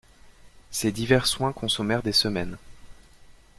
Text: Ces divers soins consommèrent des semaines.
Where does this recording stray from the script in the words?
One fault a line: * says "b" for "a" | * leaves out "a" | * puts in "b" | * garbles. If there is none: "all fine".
all fine